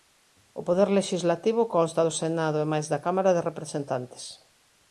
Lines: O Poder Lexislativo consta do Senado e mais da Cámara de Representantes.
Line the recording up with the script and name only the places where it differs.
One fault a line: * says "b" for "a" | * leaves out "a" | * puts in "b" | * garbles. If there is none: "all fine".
all fine